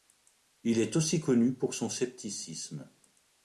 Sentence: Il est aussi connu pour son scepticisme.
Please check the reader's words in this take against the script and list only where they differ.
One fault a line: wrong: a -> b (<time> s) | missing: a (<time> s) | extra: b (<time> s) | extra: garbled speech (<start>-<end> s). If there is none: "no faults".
no faults